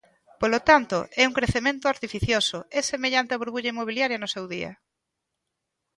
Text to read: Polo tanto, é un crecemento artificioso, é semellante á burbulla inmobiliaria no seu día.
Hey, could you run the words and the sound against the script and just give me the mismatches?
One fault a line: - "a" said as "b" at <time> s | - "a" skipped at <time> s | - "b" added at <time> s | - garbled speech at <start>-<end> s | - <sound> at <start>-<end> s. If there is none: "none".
none